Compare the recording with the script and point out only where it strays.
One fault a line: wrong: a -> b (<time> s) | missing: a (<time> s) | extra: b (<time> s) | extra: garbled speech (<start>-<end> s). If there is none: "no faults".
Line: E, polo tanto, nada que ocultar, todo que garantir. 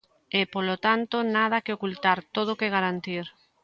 no faults